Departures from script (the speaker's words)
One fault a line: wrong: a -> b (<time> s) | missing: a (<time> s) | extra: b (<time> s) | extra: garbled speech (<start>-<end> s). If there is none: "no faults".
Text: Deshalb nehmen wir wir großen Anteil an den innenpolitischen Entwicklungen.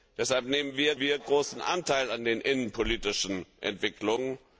no faults